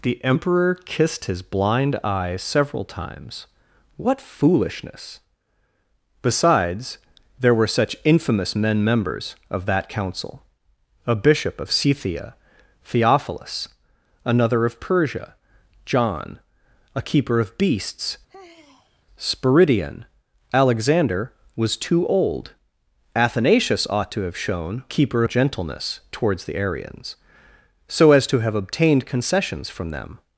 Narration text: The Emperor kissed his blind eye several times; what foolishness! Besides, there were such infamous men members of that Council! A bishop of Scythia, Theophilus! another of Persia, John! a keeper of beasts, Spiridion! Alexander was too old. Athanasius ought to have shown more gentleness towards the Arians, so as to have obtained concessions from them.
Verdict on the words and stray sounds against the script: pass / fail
fail